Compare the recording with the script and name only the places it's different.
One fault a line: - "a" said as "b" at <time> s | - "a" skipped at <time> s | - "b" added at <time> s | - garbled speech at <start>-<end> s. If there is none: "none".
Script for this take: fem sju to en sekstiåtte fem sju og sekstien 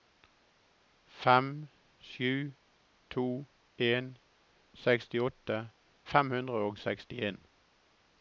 - "sju" said as "hundre" at 6.3 s